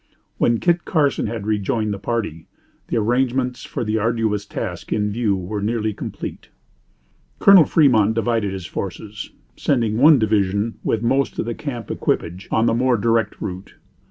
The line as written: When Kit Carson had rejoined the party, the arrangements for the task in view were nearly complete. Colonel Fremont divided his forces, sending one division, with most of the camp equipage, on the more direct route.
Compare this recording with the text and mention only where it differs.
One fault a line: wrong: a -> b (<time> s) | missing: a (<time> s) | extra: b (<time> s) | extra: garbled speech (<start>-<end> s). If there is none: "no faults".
extra: arduous (4.0 s)